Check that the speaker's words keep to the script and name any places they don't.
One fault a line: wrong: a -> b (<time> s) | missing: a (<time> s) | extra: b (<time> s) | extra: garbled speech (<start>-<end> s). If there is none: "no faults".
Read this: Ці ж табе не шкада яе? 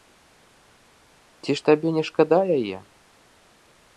no faults